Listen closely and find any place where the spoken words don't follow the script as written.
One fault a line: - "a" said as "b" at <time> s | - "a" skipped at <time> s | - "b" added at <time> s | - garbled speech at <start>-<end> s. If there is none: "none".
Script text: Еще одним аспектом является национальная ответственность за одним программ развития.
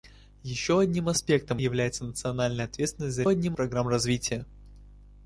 none